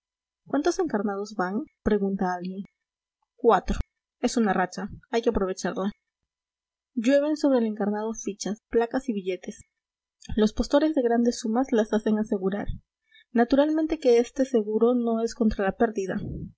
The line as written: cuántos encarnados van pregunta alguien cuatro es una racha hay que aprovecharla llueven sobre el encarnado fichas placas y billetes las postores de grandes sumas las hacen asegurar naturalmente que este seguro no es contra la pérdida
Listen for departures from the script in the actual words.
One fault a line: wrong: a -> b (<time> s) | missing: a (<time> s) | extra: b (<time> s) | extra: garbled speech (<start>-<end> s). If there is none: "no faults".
wrong: las -> los (10.4 s)